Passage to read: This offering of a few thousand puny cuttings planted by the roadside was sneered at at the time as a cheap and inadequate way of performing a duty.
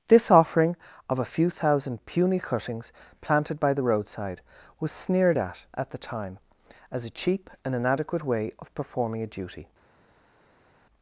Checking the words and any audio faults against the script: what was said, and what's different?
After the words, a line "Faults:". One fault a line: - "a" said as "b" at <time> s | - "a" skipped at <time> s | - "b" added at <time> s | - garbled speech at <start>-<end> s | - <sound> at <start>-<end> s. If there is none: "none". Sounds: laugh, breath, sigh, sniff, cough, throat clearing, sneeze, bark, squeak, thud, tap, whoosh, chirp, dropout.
This offering of a few thousand puny cuttings planted by the roadside was sneered at at the time as a cheap and inadequate way of performing a duty.
Faults:
none